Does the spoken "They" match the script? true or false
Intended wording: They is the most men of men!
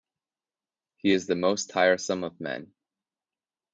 false